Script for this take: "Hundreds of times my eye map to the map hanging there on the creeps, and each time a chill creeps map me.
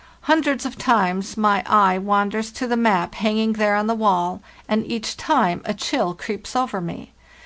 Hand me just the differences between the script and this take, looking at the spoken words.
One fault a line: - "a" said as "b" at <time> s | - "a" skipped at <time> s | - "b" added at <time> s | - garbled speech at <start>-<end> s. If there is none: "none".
- "map" said as "wanders" at 1.9 s
- "creeps" said as "wall" at 3.9 s
- "map" said as "over" at 6.6 s